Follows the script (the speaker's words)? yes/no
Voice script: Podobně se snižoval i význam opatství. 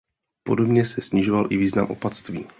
yes